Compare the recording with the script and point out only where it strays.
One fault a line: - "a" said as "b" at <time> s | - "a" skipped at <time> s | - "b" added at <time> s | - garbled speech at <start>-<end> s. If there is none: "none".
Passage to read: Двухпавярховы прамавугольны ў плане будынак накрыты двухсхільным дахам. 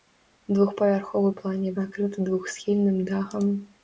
- "прамавугольны" skipped at 1.3 s
- "будынак" skipped at 1.7 s